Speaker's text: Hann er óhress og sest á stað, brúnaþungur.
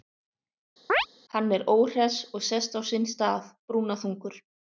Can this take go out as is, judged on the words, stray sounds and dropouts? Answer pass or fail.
fail